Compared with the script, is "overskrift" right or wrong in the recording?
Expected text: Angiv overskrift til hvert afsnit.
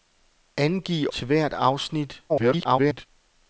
wrong